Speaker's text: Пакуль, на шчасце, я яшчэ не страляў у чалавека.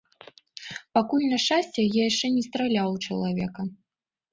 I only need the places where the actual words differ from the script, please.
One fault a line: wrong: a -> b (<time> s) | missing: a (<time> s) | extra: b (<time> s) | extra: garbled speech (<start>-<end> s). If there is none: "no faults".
no faults